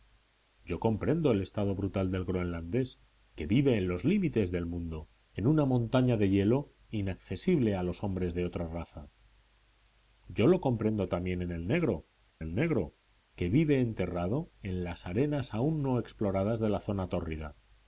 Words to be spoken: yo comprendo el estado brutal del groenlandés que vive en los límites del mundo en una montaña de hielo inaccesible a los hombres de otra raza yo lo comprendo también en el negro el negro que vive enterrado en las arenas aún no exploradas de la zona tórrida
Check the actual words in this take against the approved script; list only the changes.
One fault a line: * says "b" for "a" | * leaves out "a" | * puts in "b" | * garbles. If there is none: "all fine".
all fine